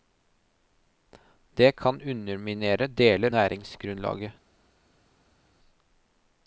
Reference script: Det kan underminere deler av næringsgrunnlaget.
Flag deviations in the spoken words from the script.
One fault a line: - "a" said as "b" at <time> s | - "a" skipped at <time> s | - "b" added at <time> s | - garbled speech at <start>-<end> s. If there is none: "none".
- "av" skipped at 3.3 s